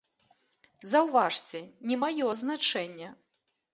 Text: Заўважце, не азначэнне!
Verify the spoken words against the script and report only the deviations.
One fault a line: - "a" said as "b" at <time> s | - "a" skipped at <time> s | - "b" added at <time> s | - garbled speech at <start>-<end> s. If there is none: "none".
- "маё" added at 2.0 s